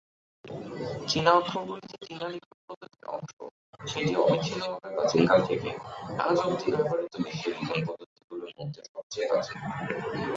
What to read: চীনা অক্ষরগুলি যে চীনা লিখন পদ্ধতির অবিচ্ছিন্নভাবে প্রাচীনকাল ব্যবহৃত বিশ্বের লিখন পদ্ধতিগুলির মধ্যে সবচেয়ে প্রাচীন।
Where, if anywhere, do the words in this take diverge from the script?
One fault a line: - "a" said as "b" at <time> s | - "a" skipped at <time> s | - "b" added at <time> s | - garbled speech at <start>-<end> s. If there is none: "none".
- "অংশ সেটি" added at 3.2 s
- "থেকে আজ অবধি" added at 5.5 s